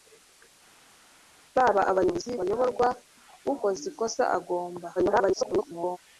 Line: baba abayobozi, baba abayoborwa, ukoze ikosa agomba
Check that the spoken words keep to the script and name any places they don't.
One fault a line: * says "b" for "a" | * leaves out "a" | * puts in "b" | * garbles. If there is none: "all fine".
* leaves out "baba"
* garbles